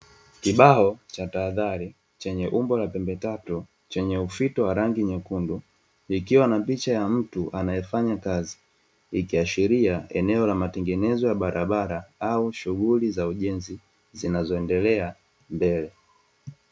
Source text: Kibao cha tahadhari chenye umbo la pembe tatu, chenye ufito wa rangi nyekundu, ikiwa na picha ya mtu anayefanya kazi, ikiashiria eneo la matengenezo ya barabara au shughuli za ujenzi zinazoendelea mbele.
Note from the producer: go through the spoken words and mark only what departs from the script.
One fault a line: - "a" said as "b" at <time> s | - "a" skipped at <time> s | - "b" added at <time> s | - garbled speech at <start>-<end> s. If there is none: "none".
none